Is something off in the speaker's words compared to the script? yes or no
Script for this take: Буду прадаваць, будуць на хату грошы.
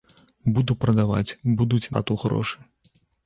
yes